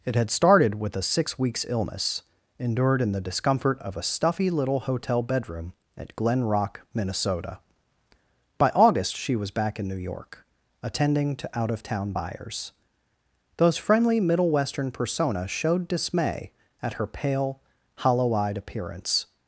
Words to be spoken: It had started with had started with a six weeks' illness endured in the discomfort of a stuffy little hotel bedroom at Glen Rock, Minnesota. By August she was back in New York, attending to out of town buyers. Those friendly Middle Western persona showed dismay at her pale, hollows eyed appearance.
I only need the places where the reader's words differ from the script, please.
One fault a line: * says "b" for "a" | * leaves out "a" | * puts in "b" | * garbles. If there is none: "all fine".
* leaves out "had started with"
* says "hollow" for "hollows"